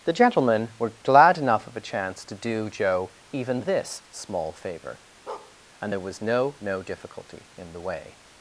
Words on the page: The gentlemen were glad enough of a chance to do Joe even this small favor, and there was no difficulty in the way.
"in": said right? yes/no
yes